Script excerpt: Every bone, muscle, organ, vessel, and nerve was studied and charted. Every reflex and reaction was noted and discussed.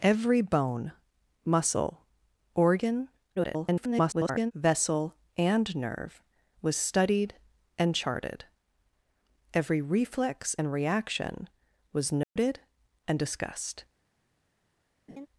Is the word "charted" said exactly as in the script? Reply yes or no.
yes